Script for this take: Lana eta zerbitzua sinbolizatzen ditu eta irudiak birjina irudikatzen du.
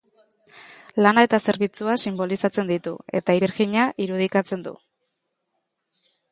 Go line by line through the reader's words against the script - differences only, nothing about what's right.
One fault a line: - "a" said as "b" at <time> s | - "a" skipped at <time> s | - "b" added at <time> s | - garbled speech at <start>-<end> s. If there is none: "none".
- "irudiak" skipped at 3.4 s